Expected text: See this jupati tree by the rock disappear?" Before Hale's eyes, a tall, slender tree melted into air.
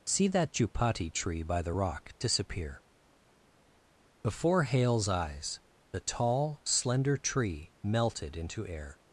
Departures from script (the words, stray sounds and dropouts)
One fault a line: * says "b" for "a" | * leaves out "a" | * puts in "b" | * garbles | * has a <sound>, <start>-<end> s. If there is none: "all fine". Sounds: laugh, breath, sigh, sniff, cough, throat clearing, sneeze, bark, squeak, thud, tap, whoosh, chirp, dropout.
* says "that" for "this"
* says "the" for "a"